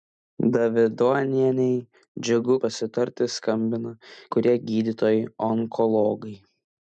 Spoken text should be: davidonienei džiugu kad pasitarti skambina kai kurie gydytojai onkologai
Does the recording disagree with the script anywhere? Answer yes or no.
yes